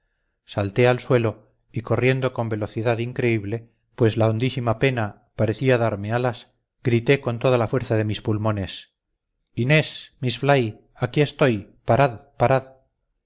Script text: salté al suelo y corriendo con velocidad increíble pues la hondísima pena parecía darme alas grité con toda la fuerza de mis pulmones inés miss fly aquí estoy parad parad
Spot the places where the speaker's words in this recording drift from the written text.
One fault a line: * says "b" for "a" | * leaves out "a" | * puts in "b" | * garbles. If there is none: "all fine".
all fine